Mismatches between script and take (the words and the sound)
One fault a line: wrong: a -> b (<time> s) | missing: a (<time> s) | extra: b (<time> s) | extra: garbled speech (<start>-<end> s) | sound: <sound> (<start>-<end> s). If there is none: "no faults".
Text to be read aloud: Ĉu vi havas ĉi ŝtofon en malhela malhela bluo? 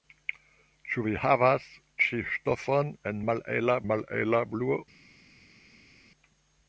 no faults